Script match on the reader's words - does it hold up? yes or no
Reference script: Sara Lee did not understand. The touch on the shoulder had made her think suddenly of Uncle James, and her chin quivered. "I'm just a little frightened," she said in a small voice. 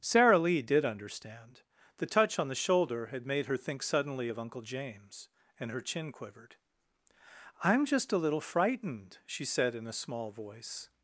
no